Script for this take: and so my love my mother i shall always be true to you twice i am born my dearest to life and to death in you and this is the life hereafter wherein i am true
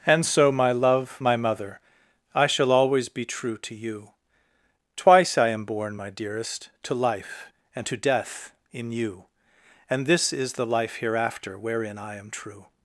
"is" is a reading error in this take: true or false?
false